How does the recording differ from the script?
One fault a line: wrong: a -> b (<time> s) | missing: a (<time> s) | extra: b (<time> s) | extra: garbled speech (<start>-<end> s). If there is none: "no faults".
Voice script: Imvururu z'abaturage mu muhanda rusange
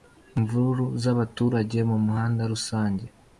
no faults